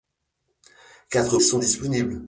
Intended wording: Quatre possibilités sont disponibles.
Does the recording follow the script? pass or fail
fail